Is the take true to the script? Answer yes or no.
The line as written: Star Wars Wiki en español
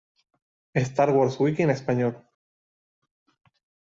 yes